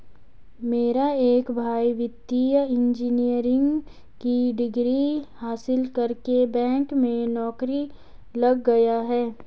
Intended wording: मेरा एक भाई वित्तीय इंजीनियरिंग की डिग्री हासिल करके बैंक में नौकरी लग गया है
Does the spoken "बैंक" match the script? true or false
true